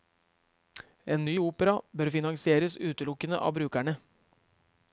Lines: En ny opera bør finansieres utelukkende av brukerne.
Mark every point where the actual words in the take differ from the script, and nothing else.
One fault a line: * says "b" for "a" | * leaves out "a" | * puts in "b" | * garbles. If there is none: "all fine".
all fine